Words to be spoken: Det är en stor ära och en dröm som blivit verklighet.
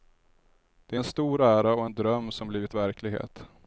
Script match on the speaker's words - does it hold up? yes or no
yes